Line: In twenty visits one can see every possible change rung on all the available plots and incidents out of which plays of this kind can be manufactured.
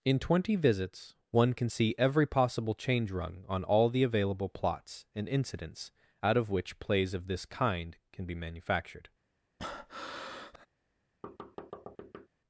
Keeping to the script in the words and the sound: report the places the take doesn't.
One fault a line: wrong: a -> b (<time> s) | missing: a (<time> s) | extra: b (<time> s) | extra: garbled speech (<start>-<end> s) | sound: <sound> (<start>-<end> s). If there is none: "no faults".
sound: breath (9.6-10.7 s)
sound: thud (11.2-12.3 s)